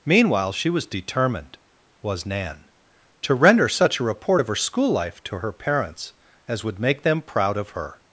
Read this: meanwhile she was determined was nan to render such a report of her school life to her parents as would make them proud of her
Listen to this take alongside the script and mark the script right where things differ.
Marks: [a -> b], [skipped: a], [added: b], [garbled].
meanwhile she was determined was nan to render such a report of her school life to her parents as would make them proud of her